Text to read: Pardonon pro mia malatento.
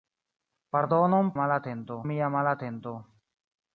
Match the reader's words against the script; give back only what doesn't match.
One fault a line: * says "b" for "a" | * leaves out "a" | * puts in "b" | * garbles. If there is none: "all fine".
* says "malatento" for "pro"